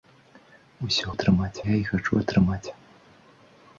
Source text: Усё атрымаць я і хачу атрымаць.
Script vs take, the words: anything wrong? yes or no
no